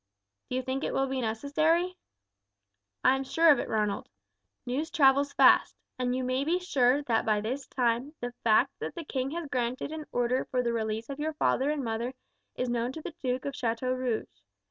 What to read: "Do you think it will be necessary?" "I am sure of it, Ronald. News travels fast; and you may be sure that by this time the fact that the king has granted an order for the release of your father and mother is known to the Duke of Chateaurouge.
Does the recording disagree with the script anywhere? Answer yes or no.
no